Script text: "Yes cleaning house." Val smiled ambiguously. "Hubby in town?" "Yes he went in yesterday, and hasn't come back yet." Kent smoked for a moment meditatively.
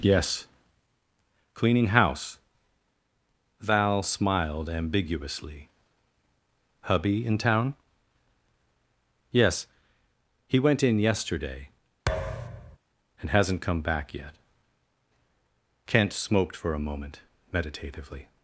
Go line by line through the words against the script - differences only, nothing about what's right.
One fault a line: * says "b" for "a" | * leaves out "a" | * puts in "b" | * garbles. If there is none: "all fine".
all fine